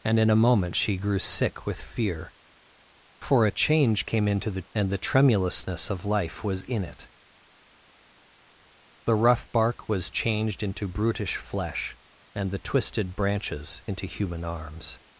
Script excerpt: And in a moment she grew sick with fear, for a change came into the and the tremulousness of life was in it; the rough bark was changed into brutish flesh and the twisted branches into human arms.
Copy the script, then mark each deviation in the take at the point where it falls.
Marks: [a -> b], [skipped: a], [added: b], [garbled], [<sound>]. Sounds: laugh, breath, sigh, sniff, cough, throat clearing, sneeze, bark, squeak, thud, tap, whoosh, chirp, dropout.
And in a moment she grew sick with fear, for a change came into the and the tremulousness of life was in it; the rough bark was changed into brutish flesh and the twisted branches into human arms.